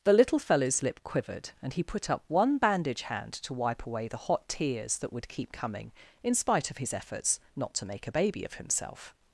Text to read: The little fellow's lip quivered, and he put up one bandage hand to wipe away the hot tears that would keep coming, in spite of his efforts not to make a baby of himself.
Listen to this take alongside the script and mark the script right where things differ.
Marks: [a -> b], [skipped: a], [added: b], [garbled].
The little fellow's lip quivered, and he put up one bandage hand to wipe away the hot tears that would keep coming, in spite of his efforts not to make a baby of himself.